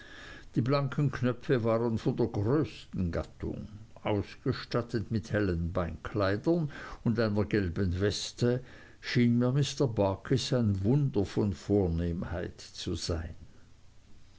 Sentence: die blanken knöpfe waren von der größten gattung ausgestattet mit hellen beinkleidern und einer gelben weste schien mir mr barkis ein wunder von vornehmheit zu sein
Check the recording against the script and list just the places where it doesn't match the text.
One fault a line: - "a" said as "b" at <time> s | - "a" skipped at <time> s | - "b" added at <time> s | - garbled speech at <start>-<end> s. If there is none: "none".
none